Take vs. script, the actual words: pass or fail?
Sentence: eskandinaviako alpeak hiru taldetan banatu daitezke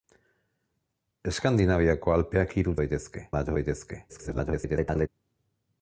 fail